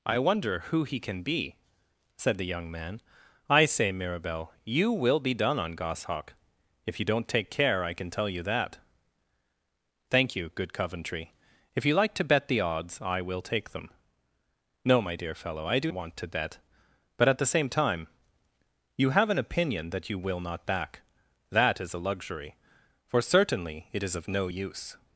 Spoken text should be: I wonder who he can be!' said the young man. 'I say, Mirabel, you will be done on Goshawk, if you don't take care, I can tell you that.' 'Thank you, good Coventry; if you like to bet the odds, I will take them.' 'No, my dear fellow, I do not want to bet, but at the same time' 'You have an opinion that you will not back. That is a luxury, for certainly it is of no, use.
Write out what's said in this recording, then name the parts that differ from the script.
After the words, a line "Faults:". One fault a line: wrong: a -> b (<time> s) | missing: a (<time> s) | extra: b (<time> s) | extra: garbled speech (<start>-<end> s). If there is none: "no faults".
I wonder who he can be!' said the young man. 'I say, Mirabel, you will be done on Goshawk, if you don't take care, I can tell you that.' 'Thank you, good Coventry; if you like to bet the odds, I will take them.' 'No, my dear fellow, I do want to bet, but at the same time' 'You have an opinion that you will not back. That is a luxury, for certainly it is of no, use.
Faults:
missing: not (15.9 s)